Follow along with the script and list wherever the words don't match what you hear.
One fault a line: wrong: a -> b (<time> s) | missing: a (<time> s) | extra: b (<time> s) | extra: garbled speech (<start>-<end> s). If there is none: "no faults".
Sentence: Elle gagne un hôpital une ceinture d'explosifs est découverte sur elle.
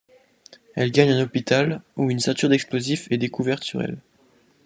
extra: où (1.9 s)